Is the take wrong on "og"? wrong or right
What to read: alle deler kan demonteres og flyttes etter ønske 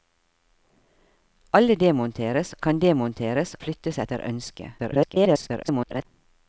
wrong